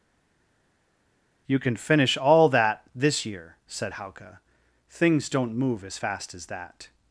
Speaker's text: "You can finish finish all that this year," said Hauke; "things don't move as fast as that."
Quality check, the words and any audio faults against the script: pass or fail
fail